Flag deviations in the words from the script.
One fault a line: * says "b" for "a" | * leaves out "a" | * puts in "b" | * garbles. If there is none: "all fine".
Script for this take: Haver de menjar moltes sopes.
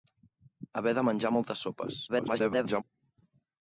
* garbles